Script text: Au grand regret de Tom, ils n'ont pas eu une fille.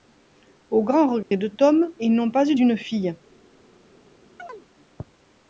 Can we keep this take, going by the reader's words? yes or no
yes